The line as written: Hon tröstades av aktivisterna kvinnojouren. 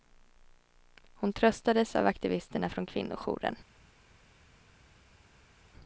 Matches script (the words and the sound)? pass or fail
fail